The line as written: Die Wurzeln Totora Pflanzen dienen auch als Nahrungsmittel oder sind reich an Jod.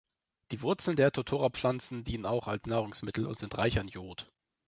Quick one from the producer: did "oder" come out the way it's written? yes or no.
no